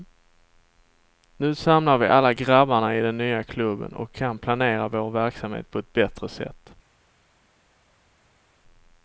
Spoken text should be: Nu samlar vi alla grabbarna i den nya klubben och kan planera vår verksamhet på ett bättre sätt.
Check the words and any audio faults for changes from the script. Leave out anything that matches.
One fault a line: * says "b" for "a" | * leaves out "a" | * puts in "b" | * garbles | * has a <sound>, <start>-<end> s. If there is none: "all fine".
all fine